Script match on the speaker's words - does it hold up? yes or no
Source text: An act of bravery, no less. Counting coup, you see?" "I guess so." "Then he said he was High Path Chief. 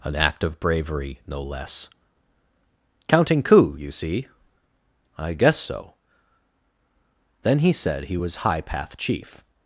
yes